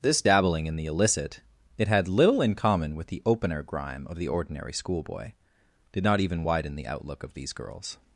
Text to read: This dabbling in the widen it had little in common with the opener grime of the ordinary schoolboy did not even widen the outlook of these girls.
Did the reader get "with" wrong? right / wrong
right